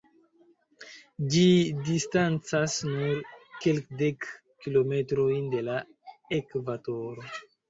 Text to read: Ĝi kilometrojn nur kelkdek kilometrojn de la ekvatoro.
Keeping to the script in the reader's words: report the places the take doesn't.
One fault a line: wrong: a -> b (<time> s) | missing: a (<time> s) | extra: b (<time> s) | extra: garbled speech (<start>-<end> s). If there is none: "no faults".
wrong: kilometrojn -> distancas (1.9 s)